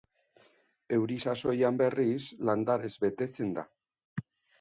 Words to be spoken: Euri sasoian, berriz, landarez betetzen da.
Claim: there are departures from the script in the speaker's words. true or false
false